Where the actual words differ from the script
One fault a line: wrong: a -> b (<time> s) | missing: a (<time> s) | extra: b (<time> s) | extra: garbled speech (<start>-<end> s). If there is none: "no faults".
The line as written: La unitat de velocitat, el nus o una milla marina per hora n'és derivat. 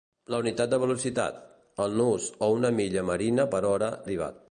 missing: n'és (4.0 s)